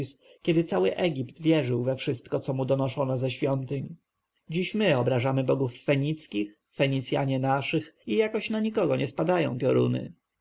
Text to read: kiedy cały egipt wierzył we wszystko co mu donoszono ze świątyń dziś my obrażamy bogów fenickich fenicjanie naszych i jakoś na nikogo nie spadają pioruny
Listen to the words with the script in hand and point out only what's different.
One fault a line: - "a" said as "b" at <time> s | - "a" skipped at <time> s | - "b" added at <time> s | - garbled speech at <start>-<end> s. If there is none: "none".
none